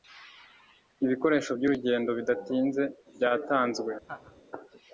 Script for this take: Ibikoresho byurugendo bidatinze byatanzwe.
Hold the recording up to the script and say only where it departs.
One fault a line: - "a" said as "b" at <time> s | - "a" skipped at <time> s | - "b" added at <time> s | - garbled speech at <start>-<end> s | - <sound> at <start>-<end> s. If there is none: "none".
- laugh at 4.0-4.4 s